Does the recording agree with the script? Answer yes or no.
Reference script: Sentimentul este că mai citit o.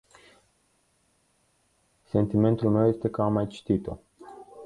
no